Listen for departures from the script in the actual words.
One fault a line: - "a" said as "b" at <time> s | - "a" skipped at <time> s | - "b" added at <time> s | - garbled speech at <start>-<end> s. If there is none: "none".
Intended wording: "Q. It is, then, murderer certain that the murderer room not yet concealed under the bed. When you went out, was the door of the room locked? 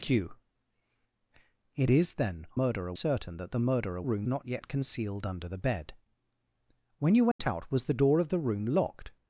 none